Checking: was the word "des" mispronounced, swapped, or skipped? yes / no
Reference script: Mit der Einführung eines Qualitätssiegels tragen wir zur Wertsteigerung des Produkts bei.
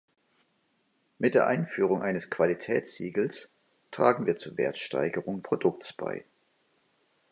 yes